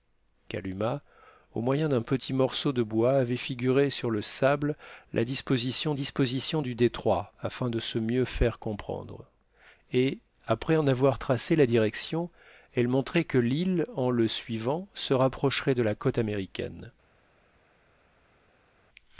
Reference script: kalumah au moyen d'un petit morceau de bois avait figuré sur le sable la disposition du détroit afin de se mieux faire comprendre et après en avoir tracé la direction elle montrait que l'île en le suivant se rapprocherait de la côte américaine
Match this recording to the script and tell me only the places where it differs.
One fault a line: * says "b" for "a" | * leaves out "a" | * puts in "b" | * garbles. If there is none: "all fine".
* puts in "disposition"